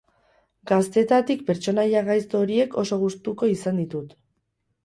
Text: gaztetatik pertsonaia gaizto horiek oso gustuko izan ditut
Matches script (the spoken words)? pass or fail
pass